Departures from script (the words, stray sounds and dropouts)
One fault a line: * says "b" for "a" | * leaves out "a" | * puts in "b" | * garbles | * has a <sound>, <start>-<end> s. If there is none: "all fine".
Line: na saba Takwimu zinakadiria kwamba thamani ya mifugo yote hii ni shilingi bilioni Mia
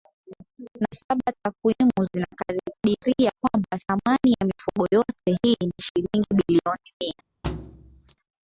* has a thud, 7.4-8.2 s